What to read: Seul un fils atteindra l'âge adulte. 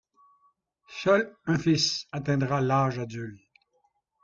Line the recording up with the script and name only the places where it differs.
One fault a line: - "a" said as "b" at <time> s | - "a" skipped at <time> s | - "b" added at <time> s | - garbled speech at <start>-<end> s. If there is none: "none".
none